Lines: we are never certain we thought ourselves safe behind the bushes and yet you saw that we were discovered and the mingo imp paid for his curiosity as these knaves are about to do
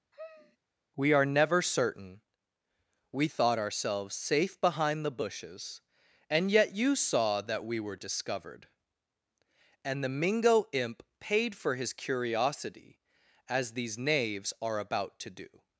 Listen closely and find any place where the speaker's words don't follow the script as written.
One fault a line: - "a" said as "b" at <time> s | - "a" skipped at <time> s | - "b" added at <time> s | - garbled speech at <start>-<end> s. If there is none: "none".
none